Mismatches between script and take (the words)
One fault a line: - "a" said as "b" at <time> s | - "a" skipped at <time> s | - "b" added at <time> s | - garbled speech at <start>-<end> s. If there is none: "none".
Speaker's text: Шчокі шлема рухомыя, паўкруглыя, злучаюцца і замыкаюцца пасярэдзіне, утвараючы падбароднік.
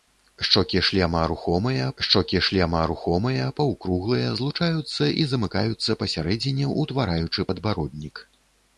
- "шчокі шлема рухомыя" added at 2.0 s